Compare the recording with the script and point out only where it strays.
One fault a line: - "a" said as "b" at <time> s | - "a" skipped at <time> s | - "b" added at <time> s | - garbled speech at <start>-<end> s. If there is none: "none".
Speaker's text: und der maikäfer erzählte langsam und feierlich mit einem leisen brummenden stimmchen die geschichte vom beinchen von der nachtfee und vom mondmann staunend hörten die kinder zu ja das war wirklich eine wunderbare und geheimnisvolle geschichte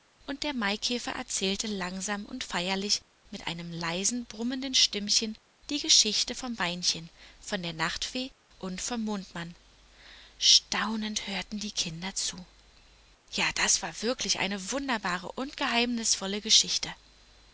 none